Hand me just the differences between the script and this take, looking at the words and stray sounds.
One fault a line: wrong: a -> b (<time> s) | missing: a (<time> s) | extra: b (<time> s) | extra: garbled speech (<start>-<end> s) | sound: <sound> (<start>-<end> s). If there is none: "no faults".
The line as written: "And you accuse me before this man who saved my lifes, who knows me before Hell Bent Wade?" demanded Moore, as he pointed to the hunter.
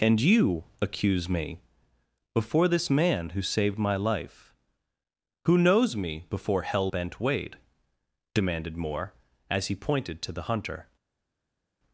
wrong: lifes -> life (4.0 s)